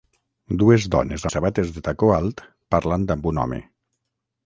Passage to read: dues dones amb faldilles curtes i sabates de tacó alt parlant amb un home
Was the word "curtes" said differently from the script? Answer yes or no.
yes